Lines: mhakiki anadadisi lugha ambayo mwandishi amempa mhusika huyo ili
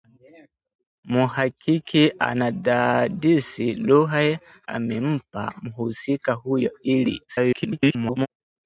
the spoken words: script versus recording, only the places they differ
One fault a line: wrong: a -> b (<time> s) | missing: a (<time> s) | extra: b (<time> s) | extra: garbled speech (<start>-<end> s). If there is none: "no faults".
missing: ambayo mwandishi (4.4 s)
extra: garbled speech (7.3-8.3 s)